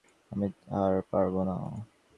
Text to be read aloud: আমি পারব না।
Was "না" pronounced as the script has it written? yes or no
yes